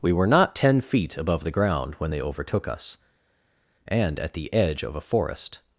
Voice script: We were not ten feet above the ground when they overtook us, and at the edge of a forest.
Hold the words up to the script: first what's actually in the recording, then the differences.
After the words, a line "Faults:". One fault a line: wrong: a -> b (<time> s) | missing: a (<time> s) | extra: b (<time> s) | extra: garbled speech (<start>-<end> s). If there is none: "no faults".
We were not ten feet above the ground when they overtook us, and at the edge of a forest.
Faults:
no faults